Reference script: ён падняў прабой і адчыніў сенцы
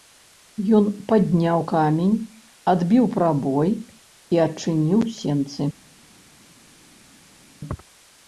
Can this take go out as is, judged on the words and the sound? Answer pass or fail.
fail